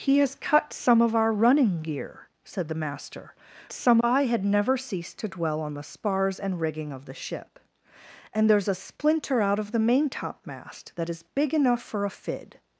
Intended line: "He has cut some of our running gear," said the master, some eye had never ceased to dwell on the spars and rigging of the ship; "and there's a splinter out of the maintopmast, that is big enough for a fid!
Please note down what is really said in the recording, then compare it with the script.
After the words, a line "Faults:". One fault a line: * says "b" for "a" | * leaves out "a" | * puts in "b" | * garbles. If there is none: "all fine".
"He has cut some of our running gear," said the master, some eye had never ceased to dwell on the spars and rigging of the ship; "and there's a splinter out of the maintopmast, that is big enough for a fid!
Faults:
all fine